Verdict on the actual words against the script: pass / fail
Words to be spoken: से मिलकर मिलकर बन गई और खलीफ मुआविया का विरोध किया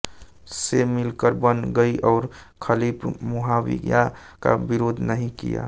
fail